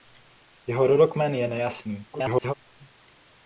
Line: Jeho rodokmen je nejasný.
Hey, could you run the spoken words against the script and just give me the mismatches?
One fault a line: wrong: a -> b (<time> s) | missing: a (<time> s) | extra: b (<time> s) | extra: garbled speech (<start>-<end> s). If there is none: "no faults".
extra: garbled speech (2.1-2.5 s)